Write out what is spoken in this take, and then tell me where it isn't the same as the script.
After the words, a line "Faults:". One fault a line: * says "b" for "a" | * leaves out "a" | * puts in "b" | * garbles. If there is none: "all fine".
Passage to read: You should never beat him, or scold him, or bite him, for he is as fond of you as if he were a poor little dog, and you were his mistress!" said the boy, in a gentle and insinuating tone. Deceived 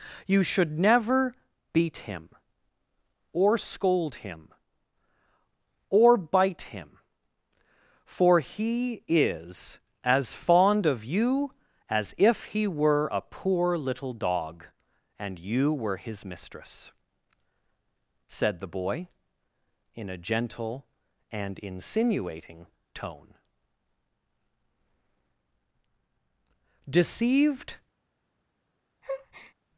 You should never beat him, or scold him, or bite him, for he is as fond of you as if he were a poor little dog, and you were his mistress!" said the boy, in a gentle and insinuating tone. Deceived
Faults:
all fine